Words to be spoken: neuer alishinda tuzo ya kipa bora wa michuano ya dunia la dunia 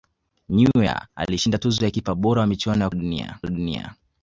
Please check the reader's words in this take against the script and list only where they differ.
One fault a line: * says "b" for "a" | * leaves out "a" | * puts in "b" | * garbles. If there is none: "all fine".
all fine